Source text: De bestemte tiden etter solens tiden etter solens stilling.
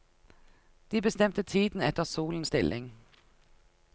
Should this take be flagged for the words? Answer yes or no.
yes